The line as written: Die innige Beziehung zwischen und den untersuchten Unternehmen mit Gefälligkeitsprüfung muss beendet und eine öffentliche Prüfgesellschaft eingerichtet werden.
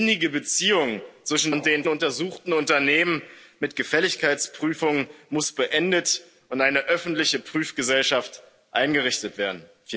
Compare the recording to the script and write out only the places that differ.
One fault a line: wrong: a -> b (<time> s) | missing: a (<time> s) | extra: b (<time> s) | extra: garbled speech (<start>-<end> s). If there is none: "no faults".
no faults